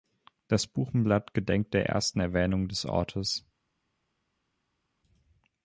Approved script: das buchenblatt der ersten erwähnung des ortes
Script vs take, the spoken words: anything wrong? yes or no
yes